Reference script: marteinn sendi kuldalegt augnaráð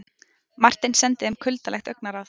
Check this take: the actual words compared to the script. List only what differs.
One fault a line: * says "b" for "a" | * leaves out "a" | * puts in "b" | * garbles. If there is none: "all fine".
* puts in "þeim"